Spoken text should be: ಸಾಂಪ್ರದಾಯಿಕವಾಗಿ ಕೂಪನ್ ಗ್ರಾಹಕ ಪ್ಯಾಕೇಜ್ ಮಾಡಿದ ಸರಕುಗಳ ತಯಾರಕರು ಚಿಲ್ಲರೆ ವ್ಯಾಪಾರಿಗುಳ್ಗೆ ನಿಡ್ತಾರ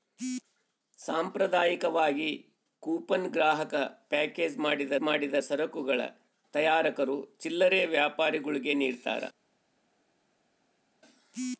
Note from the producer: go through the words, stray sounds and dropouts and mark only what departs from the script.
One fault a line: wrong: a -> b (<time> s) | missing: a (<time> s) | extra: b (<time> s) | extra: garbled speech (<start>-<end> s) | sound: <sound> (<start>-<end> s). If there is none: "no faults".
extra: ಮಾಡಿದ (5.0 s)